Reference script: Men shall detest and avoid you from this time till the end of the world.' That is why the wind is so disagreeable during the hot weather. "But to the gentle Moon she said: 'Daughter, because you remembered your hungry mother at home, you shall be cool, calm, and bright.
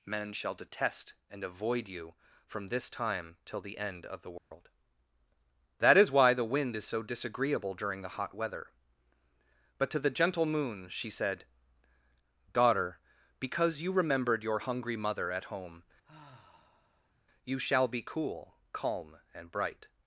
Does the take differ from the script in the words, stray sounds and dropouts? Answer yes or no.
yes